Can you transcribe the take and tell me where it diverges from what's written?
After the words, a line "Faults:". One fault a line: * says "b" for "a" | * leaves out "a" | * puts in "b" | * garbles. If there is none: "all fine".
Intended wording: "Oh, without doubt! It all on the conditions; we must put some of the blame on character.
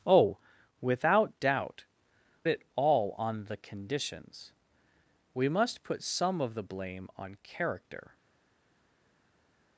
"Oh, without doubt! It all on the conditions; we must put some of the blame on character.
Faults:
all fine